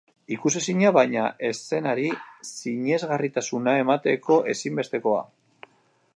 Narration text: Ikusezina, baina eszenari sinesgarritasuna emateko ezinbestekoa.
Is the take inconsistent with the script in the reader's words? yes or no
no